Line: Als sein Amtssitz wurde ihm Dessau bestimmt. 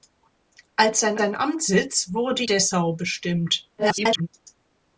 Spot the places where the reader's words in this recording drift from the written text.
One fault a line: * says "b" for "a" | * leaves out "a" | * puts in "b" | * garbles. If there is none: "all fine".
* puts in "sein"
* leaves out "ihm"
* garbles